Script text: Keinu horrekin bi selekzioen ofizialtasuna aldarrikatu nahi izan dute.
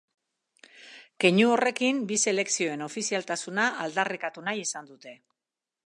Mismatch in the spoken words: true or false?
false